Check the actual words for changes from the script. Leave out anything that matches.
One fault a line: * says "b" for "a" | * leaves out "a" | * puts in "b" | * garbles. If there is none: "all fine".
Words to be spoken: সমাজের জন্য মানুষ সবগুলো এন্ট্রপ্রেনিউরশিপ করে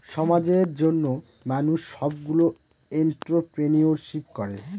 all fine